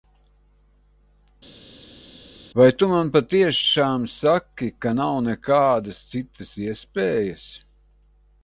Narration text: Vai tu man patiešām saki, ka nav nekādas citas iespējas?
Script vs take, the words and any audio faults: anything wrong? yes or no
no